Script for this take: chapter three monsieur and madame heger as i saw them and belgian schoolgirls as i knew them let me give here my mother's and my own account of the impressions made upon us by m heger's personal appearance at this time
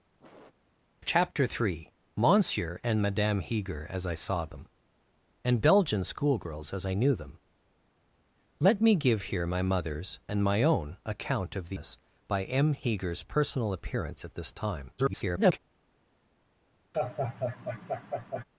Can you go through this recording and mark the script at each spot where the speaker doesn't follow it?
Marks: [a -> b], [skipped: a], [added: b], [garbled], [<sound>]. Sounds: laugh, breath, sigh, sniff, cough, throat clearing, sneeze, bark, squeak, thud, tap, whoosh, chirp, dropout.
[sniff] chapter three monsieur and madame heger as i saw them and belgian schoolgirls as i knew them let me give here my mother's and my own account of the [skipped: impressions made upon] us by m heger's personal appearance at this time [garbled] [laugh]